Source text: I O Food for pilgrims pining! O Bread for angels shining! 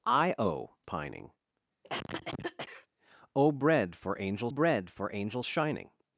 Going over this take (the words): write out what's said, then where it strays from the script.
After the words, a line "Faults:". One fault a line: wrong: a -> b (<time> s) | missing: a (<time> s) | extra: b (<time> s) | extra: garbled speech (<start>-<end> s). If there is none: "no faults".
I O Pining! O Bread for angels Bread for angels shining!
Faults:
wrong: Food for pilgrims pining O -> Pining O Bread for angels (0.8 s)